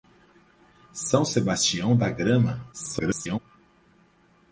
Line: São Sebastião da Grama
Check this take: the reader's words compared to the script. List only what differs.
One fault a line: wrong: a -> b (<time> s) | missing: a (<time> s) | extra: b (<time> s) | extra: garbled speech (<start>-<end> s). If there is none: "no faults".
extra: garbled speech (2.7-3.4 s)